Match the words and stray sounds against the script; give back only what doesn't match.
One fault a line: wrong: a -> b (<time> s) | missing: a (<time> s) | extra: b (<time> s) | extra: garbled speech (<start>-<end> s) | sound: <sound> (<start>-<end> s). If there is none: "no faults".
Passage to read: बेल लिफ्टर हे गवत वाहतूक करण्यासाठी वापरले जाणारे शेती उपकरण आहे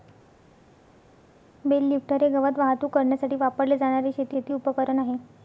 extra: शेती (4.3 s)